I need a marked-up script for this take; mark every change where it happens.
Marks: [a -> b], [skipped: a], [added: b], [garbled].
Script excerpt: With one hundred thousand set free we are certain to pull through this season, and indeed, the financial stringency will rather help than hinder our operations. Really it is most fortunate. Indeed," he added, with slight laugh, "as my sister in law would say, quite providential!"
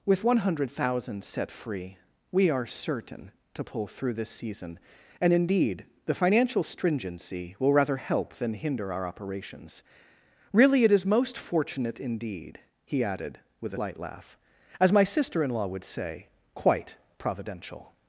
With one hundred thousand set free we are certain to pull through this season, and indeed, the financial stringency will rather help than hinder our operations. Really it is most fortunate. Indeed," he added, with slight laugh, "as my sister in law would say, quite providential!"